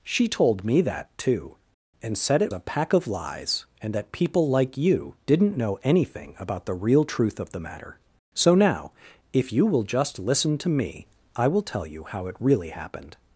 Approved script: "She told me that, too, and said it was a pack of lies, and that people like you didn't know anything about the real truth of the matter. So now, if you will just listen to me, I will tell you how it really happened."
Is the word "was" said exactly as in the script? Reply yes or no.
no